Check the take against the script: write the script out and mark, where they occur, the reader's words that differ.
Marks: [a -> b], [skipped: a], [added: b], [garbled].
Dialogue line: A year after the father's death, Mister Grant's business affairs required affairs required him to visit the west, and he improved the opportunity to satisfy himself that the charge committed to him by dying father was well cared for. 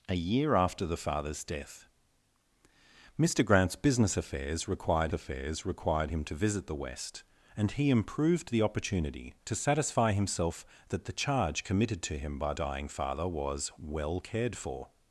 A year after the father's death, Mister Grant's business affairs required affairs required him to visit the west, and he improved the opportunity to satisfy himself that the charge committed to him by dying father was well cared for.